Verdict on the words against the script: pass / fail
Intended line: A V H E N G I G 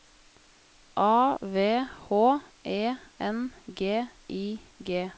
pass